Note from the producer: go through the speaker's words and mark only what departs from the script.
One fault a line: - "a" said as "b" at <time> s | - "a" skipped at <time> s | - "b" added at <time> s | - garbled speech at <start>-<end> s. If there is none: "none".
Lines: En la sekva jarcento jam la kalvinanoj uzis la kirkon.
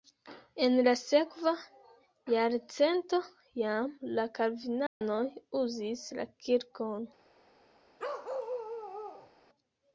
none